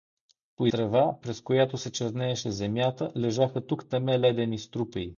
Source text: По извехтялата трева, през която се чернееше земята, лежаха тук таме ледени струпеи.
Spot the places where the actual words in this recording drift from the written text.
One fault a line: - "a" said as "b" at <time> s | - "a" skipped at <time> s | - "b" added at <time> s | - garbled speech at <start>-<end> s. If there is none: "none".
- "извехтялата" skipped at 0.7 s